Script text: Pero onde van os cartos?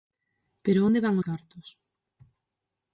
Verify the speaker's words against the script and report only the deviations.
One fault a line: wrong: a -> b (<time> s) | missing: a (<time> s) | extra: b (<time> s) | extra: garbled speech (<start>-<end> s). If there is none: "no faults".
missing: os (1.1 s)